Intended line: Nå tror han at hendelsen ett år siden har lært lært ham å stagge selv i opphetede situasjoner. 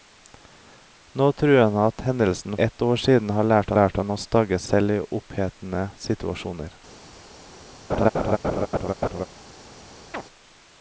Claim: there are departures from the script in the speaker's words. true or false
false